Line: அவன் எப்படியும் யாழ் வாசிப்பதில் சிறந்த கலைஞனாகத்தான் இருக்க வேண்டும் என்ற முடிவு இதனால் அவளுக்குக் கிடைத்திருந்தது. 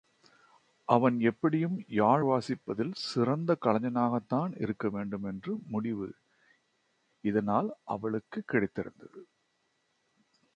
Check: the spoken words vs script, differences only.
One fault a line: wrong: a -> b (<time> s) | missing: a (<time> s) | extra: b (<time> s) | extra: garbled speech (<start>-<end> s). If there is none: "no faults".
no faults